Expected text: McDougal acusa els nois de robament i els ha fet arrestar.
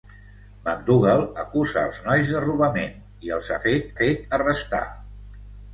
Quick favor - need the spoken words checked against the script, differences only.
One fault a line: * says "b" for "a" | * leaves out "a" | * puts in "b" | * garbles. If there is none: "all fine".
* puts in "fet"